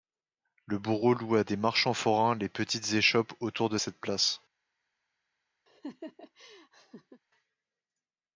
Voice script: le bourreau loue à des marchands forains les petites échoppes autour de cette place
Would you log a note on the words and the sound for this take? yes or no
yes